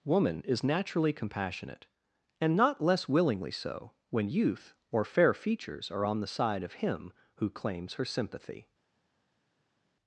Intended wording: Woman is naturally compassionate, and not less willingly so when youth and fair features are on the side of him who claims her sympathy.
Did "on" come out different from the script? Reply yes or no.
no